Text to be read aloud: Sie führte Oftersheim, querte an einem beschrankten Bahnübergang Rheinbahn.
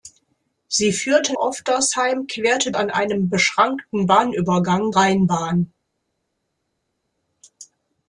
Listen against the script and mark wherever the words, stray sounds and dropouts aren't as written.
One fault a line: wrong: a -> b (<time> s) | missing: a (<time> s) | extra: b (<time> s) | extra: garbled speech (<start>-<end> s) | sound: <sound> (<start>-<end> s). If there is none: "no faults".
no faults